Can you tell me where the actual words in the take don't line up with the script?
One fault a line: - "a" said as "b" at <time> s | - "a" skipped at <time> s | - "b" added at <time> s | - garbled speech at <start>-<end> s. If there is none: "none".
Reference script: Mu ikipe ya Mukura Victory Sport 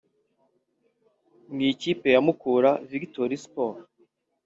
none